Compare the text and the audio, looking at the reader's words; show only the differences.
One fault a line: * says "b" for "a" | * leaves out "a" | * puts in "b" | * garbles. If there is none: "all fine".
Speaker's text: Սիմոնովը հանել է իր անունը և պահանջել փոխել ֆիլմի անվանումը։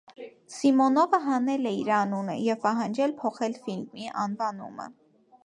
all fine